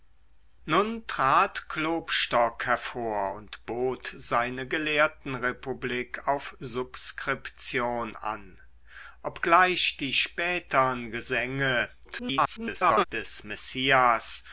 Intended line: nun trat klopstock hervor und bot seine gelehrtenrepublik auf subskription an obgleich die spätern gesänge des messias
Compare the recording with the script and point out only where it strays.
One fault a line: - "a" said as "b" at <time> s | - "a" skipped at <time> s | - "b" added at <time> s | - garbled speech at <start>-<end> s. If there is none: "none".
- garbled speech at 12.0-13.0 s